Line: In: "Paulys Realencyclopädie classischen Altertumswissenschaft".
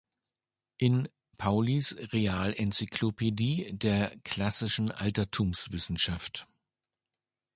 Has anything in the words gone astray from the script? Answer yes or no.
yes